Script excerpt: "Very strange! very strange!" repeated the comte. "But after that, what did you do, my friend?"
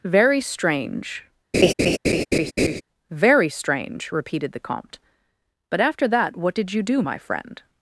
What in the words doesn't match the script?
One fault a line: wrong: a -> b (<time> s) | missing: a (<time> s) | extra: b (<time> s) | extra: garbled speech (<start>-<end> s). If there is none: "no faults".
no faults